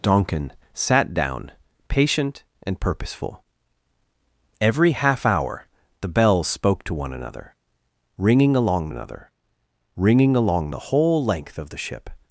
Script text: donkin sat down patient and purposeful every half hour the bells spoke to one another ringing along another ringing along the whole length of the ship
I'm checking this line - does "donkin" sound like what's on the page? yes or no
yes